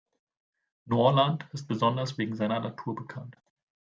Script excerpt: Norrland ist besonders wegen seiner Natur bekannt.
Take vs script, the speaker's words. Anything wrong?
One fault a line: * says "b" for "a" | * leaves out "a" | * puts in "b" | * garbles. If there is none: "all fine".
all fine